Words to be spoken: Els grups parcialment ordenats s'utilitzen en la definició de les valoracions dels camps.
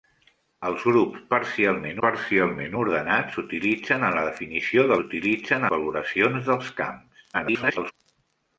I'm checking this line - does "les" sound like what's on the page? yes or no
no